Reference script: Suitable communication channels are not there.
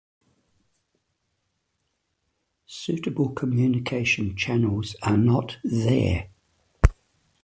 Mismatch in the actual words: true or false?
false